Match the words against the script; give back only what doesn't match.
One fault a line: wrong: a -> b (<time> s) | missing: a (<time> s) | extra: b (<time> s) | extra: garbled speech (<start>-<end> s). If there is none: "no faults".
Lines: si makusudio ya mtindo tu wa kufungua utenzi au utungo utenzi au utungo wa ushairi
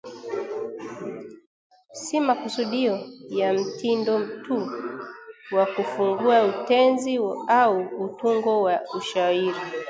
missing: utenzi au utungo (8.6 s)